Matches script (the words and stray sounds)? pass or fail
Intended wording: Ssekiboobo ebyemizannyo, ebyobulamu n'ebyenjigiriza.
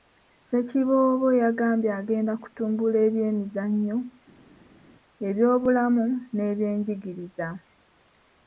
fail